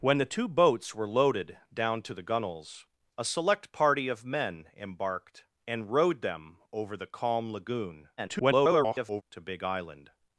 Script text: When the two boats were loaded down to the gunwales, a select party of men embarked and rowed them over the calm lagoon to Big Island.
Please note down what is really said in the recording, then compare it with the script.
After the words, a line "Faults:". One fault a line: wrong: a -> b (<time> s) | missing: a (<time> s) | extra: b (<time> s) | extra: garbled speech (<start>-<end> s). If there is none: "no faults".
When the two boats were loaded down to the gunwales, a select party of men embarked and rowed them over the calm lagoon [garbled] to Big Island.
Faults:
extra: garbled speech (8.2-9.2 s)